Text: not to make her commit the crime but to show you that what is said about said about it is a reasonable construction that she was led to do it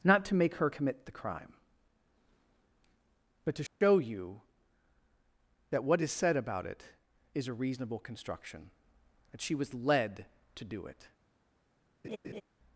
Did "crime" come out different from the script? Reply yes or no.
no